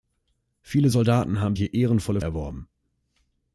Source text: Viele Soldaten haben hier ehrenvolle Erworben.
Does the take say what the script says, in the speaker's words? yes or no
yes